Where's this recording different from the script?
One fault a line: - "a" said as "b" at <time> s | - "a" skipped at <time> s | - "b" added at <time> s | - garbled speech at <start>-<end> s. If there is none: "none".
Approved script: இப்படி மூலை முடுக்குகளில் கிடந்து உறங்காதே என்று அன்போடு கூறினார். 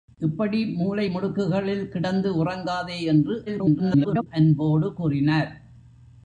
- garbled speech at 3.5-4.3 s